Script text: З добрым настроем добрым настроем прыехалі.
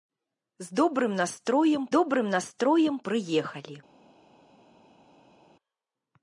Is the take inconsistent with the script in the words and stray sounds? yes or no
no